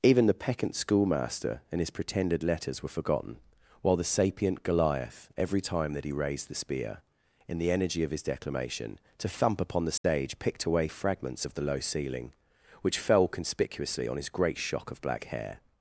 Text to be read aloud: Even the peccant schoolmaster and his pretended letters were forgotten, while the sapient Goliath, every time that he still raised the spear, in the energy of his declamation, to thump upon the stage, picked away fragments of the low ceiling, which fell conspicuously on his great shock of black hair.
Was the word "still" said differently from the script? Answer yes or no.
yes